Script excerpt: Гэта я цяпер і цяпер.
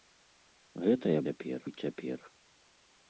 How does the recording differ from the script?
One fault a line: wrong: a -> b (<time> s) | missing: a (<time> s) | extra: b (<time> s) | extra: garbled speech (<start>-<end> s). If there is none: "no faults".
no faults